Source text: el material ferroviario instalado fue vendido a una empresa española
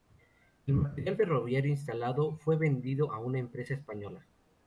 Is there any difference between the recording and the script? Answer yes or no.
no